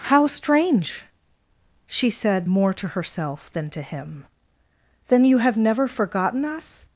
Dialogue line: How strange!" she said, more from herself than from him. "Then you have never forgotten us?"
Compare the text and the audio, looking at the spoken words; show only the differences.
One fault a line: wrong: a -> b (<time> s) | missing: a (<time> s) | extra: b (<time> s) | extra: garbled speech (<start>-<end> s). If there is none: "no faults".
wrong: from -> to (2.7 s)
wrong: from -> to (3.7 s)